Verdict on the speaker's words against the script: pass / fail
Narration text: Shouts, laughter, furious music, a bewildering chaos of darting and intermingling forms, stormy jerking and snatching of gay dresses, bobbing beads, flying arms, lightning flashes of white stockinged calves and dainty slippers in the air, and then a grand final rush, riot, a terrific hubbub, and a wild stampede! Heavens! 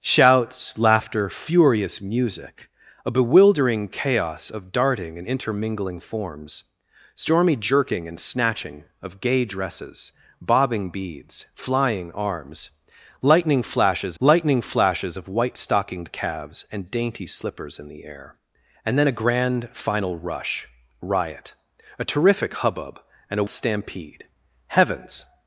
fail